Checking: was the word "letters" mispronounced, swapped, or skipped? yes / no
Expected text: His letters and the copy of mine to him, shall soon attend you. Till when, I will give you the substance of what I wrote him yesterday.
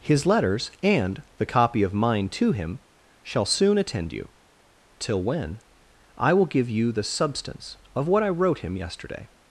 no